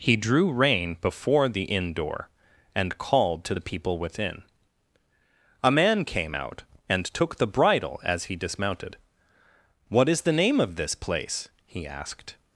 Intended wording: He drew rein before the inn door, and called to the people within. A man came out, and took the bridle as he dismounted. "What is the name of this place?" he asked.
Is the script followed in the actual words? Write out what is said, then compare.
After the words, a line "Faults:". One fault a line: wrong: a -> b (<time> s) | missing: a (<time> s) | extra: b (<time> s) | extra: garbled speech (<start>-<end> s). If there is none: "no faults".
He drew rein before the inn door, and called to the people within. A man came out, and took the bridle as he dismounted. "What is the name of this place?" he asked.
Faults:
no faults